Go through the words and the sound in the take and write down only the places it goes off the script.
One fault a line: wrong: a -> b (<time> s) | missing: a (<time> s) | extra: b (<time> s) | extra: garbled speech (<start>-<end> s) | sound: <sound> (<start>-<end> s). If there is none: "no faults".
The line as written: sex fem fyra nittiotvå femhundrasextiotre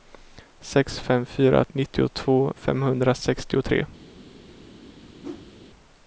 sound: whoosh (5.2-5.5 s)